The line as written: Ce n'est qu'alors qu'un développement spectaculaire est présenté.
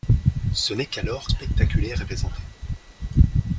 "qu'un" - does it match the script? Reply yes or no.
no